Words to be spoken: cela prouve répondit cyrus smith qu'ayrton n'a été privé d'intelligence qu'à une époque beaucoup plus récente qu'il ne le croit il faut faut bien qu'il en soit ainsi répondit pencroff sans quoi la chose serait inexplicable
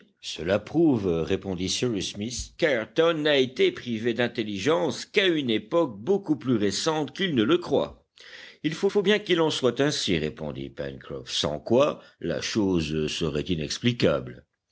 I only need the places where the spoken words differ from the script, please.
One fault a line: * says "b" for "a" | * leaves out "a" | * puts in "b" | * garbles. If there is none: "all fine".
all fine